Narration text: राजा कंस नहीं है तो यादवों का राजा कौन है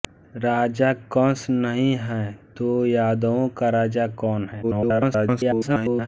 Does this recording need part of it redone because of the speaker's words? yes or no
yes